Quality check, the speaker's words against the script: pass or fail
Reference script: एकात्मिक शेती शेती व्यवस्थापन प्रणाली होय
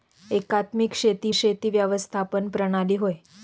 pass